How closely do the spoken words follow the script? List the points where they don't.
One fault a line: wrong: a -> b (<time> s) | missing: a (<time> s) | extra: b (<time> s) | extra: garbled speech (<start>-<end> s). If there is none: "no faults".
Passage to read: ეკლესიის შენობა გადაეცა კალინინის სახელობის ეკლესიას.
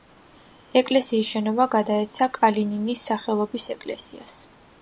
no faults